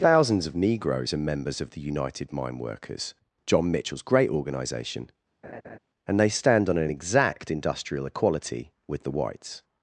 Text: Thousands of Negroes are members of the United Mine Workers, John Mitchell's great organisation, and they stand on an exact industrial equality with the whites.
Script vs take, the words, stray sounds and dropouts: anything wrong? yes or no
yes